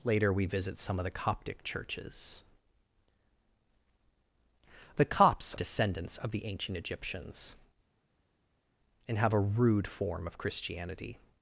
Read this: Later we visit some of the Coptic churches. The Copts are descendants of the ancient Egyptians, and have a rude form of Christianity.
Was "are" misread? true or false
true